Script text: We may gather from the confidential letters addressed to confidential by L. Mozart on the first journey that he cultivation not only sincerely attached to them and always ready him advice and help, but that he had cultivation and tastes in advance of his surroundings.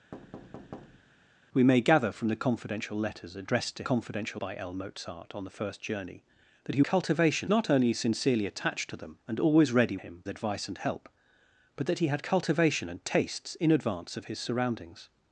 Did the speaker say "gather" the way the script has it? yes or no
yes